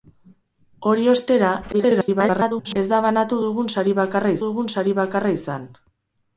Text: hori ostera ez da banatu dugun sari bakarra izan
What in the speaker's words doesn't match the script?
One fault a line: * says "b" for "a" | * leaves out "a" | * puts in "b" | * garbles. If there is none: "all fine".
* garbles
* puts in "dugun sari bakarra"